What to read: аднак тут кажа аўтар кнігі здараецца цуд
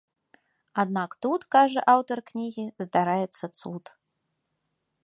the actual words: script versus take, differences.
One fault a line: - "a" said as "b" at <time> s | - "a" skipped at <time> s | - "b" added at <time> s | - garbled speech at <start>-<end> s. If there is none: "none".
none